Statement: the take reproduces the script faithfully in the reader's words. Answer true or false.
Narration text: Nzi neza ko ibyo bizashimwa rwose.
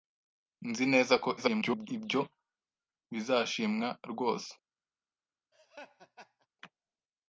false